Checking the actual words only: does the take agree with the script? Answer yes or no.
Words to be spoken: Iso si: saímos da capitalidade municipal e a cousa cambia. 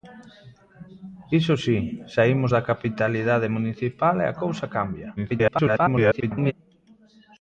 no